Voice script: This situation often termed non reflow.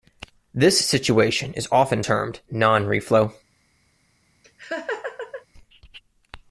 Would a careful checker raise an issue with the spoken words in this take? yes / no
yes